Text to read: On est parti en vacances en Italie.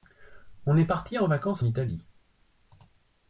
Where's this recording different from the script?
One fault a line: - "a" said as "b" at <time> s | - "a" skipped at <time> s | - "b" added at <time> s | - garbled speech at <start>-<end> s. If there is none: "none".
- "en" skipped at 1.6 s